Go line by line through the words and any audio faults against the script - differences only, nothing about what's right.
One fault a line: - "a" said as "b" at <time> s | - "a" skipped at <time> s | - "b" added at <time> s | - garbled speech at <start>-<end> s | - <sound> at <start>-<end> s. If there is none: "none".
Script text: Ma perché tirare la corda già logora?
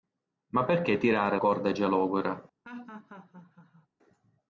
- "la" skipped at 1.4 s
- laugh at 2.6-3.9 s